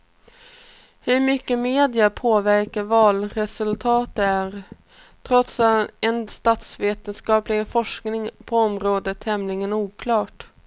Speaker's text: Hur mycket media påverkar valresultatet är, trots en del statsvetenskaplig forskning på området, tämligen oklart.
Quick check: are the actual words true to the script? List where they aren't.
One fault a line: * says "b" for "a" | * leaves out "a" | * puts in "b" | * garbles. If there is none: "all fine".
* leaves out "del"